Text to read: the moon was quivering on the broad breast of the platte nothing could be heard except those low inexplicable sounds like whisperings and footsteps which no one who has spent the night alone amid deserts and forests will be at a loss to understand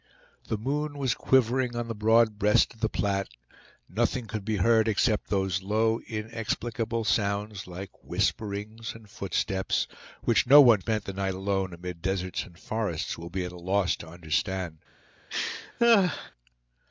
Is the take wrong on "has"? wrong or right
wrong